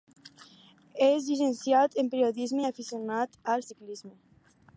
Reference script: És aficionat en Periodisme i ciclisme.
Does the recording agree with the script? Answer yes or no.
no